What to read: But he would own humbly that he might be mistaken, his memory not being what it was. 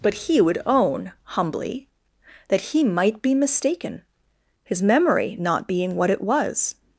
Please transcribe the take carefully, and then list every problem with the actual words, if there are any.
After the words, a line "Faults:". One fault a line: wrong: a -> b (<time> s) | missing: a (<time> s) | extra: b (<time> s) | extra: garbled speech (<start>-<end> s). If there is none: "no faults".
But he would own humbly that he might be mistaken, his memory not being what it was.
Faults:
no faults